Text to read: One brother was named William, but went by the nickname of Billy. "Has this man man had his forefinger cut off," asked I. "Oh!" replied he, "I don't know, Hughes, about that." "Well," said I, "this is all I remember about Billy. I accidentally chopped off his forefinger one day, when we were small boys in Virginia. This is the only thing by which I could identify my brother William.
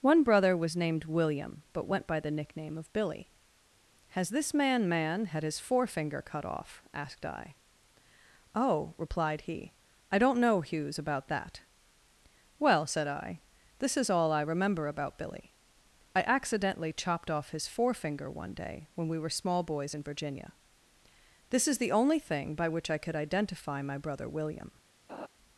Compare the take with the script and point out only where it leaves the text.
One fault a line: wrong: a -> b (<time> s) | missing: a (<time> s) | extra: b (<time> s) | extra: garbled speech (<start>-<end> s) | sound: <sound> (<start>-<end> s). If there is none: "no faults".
sound: laugh (25.1-25.3 s)